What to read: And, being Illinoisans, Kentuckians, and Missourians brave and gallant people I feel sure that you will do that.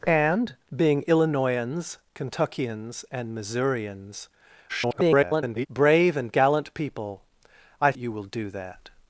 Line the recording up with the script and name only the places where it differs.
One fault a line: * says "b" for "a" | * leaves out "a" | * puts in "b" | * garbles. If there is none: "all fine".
* garbles
* leaves out "feel sure that"